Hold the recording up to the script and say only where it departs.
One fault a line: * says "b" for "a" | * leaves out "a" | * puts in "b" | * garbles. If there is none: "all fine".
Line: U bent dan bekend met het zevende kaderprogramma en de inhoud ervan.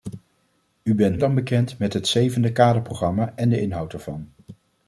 all fine